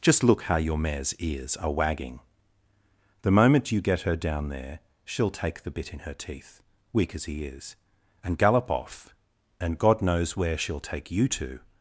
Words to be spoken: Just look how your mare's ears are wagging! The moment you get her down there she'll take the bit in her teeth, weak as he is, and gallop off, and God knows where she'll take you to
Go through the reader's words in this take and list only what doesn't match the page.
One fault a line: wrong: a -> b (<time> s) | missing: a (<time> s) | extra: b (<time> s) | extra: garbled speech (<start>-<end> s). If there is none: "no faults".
no faults